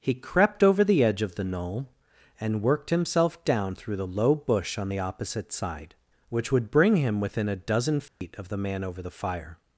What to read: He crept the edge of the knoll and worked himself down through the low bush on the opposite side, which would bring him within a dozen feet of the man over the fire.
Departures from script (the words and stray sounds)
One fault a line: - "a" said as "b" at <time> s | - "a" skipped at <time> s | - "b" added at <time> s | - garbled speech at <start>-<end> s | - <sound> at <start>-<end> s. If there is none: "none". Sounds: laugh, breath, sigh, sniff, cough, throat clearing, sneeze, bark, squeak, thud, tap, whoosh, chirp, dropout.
- "over" added at 0.6 s
- dropout at 8.1-8.2 s